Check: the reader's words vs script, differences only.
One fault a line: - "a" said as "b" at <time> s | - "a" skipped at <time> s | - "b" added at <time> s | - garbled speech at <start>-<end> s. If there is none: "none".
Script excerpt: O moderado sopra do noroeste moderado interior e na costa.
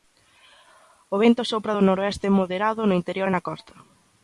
- "moderado" said as "vento" at 1.2 s
- "no" added at 2.9 s